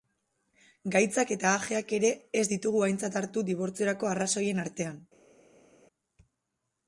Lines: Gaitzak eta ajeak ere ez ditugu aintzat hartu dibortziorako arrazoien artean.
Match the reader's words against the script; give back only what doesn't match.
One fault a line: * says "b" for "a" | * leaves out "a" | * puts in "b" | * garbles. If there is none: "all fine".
all fine